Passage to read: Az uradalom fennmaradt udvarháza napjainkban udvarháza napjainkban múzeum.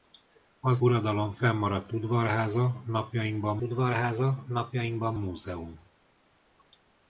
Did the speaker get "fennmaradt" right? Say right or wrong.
right